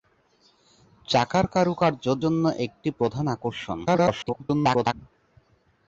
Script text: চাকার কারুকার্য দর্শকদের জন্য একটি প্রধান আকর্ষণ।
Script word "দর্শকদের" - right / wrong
wrong